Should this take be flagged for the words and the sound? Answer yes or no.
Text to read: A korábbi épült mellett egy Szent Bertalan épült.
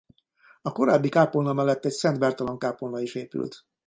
yes